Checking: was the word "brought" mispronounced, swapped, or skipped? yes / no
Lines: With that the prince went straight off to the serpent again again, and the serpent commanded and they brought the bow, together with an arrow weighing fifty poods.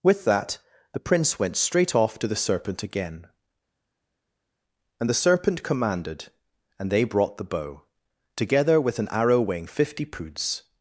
no